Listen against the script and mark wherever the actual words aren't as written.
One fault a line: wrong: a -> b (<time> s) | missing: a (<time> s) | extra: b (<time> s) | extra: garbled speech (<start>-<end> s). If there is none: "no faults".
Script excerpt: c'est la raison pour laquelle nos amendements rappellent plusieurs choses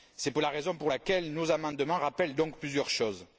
extra: donc (2.3 s)